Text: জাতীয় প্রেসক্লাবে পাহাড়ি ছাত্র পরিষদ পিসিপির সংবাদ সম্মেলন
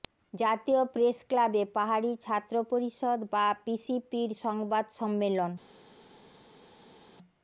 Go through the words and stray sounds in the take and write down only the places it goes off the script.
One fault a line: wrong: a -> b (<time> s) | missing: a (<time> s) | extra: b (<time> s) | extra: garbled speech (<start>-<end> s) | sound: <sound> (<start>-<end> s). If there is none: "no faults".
extra: বা (3.3 s)